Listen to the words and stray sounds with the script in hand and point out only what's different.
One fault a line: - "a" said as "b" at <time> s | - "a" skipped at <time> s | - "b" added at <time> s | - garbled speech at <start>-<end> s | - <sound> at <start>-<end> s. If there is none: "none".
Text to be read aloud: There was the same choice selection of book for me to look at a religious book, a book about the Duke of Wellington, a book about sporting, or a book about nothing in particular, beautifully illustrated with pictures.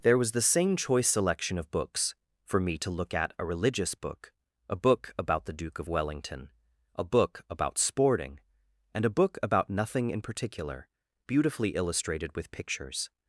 - "book" said as "books" at 1.7 s
- "or" said as "and" at 8.9 s